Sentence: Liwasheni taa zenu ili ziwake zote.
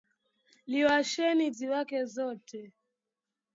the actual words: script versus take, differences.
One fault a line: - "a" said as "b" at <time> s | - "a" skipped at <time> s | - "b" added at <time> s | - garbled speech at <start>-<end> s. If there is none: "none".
- "taa zenu ili" skipped at 1.5 s